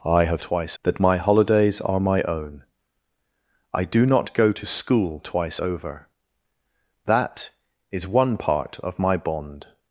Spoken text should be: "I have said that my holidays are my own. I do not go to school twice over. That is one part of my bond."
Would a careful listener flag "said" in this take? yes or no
yes